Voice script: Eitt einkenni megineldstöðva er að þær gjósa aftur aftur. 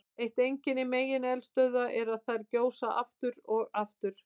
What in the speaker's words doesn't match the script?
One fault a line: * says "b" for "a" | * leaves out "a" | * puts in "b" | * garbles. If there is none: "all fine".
* puts in "og"